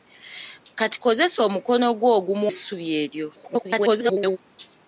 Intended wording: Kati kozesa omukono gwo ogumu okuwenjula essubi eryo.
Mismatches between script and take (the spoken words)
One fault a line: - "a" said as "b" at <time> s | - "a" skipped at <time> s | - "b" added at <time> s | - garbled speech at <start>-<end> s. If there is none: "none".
- "okuwenjula" skipped at 2.5 s
- garbled speech at 3.4-4.4 s